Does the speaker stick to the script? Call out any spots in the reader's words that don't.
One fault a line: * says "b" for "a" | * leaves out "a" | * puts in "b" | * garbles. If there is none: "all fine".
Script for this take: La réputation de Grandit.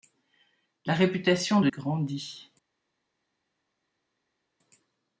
all fine